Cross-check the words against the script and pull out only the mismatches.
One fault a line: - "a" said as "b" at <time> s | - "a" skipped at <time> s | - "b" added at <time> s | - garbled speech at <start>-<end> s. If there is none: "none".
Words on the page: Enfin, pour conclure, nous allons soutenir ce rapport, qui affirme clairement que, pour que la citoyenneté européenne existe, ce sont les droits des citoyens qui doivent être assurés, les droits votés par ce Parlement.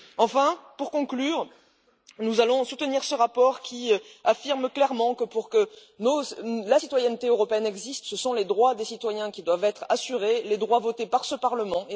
none